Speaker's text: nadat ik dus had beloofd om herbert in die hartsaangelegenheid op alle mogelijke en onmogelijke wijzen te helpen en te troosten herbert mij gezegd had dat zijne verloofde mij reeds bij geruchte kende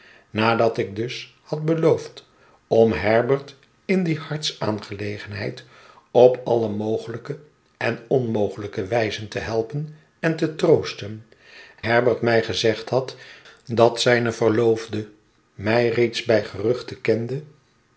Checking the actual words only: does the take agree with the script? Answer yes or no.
yes